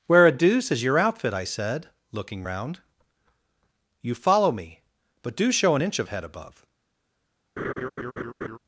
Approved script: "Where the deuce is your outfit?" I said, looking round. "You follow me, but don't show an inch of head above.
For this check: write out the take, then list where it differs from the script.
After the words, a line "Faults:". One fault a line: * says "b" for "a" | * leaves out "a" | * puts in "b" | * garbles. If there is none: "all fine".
"Where a deuce is your outfit?" I said, looking round. "You follow me, but do show an inch of head above.
Faults:
* says "a" for "the"
* says "do" for "don't"